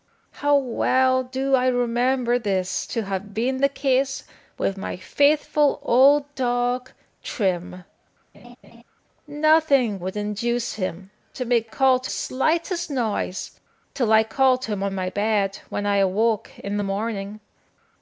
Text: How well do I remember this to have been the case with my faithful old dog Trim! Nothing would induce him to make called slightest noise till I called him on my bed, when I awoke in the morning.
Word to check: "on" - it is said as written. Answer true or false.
true